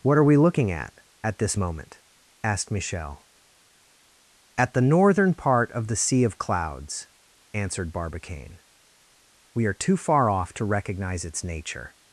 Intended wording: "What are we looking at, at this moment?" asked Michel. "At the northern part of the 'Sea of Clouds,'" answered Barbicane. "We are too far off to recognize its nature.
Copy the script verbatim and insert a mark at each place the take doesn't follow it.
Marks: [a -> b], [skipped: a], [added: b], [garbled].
"What are we looking at, at this moment?" asked Michel. "At the northern part of the 'Sea of Clouds,'" answered Barbicane. "We are too far off to recognize its nature.